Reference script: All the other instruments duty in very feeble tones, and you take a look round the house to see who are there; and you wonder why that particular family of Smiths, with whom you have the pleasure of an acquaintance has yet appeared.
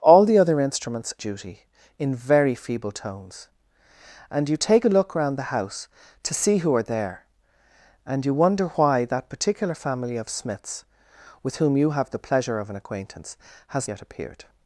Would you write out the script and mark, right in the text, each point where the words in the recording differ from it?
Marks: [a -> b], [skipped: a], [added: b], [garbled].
All the other instruments duty in very feeble tones, and you take a look round the house to see who are there; and you wonder why that particular family of Smiths, with whom you have the pleasure of an acquaintance has yet appeared.